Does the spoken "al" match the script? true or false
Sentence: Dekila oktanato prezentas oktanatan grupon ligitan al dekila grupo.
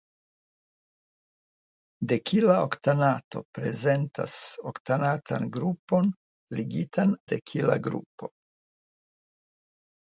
false